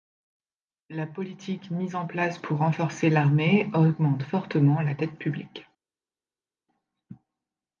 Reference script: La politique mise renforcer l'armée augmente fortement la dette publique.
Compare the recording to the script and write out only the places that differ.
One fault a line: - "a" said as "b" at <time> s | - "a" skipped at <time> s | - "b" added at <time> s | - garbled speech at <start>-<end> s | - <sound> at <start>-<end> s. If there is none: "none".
- "en place pour" added at 1.9 s